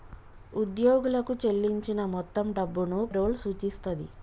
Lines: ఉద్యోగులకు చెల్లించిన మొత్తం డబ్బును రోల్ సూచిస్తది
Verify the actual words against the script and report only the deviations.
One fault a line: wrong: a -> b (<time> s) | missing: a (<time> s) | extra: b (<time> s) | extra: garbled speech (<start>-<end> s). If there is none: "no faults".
no faults